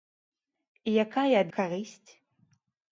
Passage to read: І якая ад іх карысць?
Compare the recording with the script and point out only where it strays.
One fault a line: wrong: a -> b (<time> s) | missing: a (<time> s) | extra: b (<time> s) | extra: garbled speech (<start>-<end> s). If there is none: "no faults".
missing: іх (1.5 s)